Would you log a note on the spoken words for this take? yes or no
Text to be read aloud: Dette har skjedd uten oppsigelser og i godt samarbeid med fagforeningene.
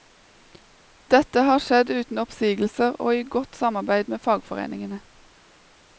no